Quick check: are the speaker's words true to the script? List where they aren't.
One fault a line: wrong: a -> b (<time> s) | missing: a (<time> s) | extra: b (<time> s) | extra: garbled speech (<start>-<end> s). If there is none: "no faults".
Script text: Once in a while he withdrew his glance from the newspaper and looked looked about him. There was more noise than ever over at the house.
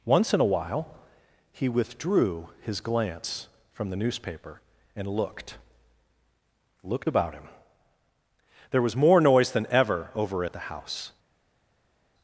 no faults